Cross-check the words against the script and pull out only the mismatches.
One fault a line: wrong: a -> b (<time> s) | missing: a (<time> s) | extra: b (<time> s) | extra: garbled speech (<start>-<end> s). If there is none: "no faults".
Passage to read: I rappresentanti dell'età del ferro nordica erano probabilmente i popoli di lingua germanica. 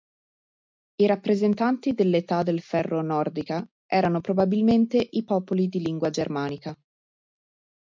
no faults